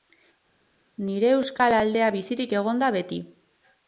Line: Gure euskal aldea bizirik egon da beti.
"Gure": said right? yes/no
no